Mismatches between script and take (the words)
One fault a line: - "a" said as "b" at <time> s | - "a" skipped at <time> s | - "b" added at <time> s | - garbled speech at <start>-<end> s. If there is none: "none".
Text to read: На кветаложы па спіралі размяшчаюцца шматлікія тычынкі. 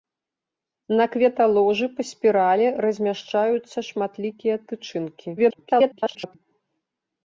- garbled speech at 5.4-6.4 s